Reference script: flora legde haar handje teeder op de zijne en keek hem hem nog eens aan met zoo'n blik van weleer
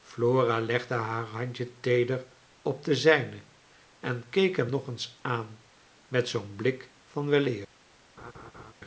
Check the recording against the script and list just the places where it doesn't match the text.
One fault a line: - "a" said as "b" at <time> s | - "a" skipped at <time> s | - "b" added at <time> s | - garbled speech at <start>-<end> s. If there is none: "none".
- "hem" skipped at 4.7 s